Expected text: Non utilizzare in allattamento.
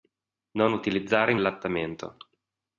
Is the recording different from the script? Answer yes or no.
no